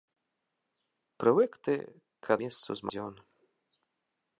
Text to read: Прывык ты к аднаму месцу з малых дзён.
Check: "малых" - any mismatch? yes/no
yes